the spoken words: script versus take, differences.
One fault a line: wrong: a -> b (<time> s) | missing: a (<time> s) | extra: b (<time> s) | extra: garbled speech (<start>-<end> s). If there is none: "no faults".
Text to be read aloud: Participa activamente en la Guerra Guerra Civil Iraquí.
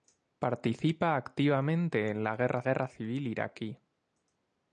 no faults